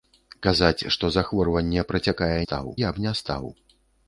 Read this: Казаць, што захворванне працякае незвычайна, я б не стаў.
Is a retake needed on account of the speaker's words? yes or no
yes